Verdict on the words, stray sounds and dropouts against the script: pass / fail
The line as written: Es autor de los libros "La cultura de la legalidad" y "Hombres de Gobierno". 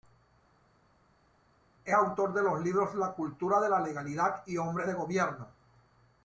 pass